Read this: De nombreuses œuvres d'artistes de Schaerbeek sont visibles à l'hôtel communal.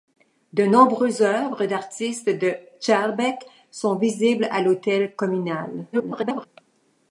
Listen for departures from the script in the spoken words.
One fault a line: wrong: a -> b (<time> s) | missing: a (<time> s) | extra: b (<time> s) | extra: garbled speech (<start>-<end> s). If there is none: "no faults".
extra: garbled speech (5.9-6.5 s)